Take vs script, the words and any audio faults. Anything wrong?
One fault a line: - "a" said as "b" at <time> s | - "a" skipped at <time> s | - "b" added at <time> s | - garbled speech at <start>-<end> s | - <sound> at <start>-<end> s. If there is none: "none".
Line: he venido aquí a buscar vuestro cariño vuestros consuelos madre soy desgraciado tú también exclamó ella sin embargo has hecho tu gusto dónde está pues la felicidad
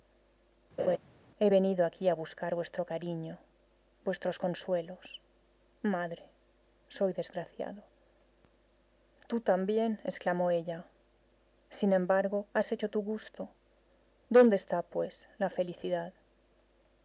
- laugh at 0.8-1.0 s